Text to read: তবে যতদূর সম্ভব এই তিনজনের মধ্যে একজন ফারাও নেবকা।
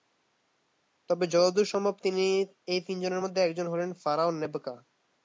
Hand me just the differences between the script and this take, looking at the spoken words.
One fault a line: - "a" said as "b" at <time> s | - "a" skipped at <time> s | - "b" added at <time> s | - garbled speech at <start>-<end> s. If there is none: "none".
- "হলেন" added at 3.7 s